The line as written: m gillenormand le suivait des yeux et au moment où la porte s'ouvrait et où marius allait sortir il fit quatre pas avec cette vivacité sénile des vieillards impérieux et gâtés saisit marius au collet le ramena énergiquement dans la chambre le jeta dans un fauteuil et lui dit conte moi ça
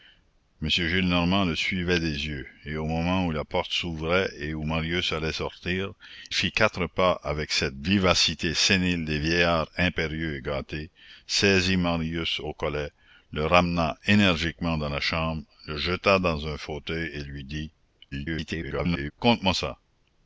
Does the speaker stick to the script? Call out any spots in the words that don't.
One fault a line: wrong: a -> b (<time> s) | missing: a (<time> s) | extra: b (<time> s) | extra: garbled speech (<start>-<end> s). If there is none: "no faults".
missing: il (5.9 s)
extra: garbled speech (18.1-19.1 s)